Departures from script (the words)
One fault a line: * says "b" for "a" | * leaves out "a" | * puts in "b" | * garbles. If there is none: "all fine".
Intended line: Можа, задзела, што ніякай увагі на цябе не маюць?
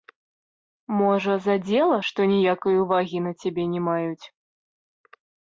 all fine